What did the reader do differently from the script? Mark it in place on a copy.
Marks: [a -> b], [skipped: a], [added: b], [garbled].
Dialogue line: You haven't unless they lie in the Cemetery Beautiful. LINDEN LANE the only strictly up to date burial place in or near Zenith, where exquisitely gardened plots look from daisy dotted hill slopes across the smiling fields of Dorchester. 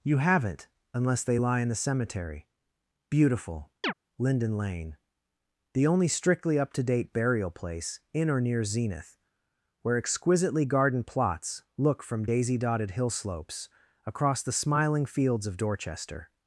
You haven't unless they lie in the Cemetery Beautiful. LINDEN LANE the only strictly up to date burial place in or near Zenith, where exquisitely gardened plots look from daisy dotted hill slopes across the smiling fields of Dorchester.